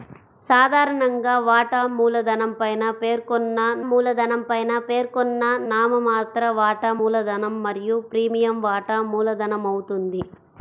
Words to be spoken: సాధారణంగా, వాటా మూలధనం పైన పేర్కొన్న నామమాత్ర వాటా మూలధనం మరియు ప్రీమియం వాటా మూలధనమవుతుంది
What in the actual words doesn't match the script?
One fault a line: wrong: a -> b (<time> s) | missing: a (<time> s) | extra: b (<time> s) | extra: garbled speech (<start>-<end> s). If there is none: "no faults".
extra: మూలధనం పైన పేర్కొన్న (3.9 s)